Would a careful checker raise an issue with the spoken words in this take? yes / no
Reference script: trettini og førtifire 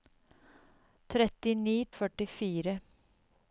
no